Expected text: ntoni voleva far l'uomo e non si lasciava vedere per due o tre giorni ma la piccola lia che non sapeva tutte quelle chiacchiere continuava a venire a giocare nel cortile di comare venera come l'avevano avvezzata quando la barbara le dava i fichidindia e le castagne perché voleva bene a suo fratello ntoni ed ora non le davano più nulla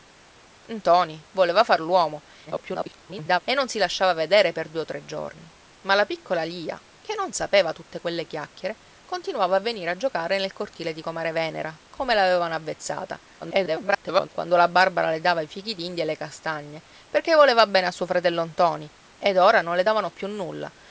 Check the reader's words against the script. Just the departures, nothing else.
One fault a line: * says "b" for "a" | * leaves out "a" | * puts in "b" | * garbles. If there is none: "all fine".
* garbles
* garbles